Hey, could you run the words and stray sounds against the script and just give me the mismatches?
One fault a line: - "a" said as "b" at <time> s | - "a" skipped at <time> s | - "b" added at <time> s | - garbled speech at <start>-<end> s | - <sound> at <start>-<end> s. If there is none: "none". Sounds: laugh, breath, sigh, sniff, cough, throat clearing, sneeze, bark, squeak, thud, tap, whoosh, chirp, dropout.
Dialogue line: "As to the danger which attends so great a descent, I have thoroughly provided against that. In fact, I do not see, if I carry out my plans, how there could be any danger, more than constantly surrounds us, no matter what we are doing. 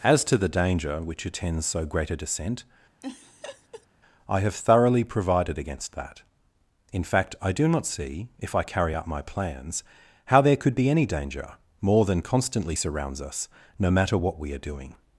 - laugh at 3.0-3.9 s